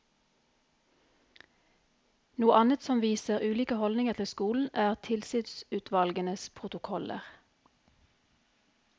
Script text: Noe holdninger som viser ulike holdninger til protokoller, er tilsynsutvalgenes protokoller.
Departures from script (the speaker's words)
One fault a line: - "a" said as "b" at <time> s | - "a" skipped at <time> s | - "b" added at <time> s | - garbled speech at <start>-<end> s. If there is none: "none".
- "holdninger" said as "annet" at 2.6 s
- "protokoller" said as "skolen" at 4.3 s